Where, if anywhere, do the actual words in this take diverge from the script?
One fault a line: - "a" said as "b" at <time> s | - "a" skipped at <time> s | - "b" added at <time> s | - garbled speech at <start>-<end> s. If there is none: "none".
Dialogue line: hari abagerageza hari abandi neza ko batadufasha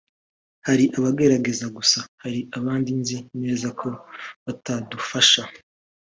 - "gusa" added at 1.8 s
- "nzi" added at 3.0 s